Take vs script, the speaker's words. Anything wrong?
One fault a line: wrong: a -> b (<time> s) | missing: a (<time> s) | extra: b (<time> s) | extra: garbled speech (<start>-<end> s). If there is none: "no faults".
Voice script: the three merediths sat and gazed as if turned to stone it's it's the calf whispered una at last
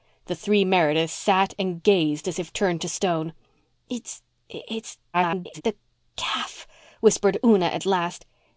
extra: garbled speech (5.1-5.6 s)